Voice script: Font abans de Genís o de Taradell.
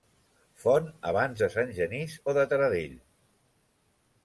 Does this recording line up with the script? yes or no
no